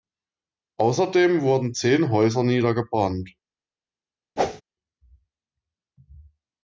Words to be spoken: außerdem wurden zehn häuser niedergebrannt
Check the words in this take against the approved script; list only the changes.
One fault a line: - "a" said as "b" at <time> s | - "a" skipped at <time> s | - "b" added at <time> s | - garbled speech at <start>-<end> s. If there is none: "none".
none